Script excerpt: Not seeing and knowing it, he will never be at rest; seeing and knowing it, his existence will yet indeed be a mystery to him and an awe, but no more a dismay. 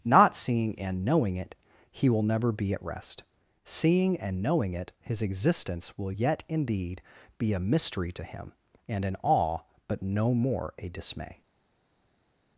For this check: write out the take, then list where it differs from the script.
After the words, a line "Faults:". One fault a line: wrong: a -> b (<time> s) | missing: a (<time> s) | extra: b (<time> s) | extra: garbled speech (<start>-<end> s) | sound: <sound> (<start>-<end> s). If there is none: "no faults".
Not seeing and knowing it, he will never be at rest; seeing and knowing it, his existence will yet indeed be a mystery to him and an awe, but no more a dismay.
Faults:
no faults